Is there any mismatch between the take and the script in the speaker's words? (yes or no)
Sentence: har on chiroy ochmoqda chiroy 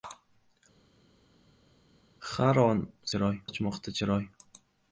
no